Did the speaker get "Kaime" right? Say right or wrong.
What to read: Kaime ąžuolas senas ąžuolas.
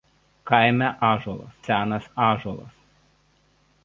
right